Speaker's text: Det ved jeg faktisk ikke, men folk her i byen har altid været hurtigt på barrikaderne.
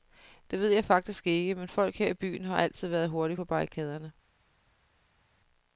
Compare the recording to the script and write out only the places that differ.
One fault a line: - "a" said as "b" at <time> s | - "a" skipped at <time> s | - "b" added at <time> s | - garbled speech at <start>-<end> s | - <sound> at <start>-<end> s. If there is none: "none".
none